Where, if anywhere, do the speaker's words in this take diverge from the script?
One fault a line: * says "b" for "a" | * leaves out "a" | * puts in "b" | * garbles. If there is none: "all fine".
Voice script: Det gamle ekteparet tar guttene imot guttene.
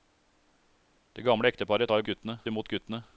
all fine